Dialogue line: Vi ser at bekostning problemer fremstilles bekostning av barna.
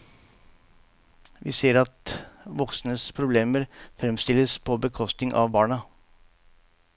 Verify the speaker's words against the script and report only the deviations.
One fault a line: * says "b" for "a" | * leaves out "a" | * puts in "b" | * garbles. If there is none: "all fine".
* says "voksnes" for "bekostning"
* puts in "på"